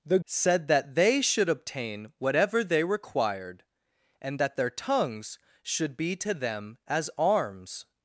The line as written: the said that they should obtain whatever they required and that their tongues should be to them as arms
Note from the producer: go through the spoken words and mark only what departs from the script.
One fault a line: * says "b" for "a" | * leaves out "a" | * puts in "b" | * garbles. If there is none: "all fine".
all fine